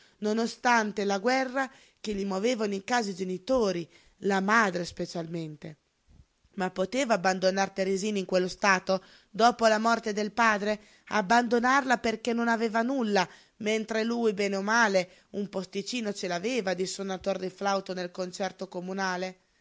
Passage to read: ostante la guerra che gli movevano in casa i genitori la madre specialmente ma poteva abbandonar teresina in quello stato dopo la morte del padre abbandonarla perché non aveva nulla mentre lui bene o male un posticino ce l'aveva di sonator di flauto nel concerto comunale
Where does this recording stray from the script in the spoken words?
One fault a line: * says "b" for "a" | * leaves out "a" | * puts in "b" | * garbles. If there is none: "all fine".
all fine